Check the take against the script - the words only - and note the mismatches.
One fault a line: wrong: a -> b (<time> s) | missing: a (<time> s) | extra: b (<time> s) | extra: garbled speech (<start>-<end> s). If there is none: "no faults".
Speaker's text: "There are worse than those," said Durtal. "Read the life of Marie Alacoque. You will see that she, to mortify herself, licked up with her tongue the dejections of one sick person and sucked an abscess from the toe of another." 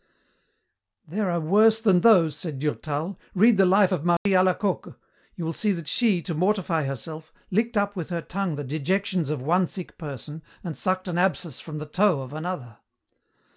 no faults